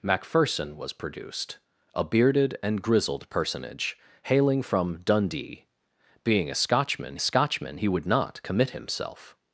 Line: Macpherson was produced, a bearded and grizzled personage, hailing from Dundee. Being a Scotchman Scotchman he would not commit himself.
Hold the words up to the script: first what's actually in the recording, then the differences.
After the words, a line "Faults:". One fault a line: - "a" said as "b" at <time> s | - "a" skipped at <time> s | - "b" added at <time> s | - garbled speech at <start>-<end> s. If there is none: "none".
Macpherson was produced, a bearded and grizzled personage, hailing from Dundee. Being a Scotchman Scotchman he would not commit himself.
Faults:
none